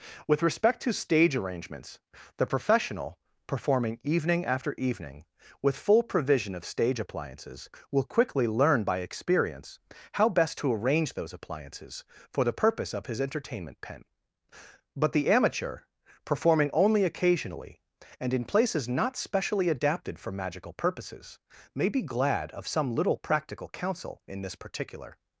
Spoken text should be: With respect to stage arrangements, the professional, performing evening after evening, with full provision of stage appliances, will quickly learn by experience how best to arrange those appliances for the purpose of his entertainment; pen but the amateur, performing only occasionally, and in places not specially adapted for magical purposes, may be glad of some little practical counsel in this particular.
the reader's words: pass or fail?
pass